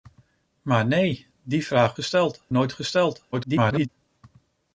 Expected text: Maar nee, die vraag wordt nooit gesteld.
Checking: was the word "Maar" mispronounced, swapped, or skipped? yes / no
no